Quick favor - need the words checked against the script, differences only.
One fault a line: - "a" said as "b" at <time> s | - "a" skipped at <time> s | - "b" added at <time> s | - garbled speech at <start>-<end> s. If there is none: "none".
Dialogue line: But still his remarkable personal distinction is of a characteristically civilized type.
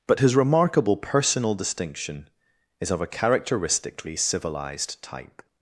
- "still" skipped at 0.2 s